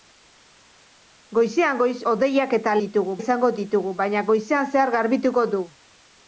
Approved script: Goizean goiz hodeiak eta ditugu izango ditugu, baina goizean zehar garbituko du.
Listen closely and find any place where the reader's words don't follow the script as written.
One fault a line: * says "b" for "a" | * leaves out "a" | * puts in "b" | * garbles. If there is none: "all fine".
all fine